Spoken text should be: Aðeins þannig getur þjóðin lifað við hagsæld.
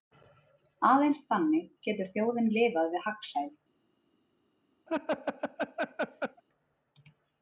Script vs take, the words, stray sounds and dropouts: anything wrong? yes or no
yes